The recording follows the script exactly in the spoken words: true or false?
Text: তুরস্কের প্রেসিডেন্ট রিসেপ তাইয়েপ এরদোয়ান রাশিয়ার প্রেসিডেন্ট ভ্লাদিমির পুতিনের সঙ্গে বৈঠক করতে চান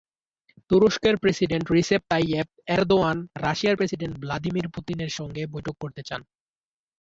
true